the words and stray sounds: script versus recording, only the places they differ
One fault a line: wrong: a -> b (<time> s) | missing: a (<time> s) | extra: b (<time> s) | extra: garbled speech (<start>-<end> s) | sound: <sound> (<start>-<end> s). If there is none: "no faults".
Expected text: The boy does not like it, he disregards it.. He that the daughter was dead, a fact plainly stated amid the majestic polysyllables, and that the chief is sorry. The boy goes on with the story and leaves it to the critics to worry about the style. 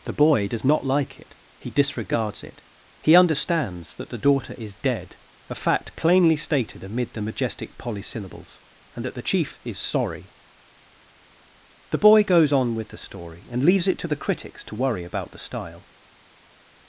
extra: understands (3.1 s)
wrong: was -> is (4.6 s)